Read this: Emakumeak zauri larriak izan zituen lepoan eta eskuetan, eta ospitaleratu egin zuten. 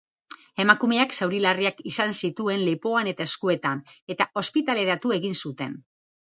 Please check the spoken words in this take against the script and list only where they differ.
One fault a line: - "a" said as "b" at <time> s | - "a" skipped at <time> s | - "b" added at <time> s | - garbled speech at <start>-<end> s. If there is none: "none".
none